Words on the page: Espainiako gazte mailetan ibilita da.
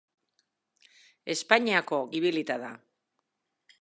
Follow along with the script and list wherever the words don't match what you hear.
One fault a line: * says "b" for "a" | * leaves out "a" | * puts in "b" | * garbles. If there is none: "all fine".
* leaves out "gazte mailetan"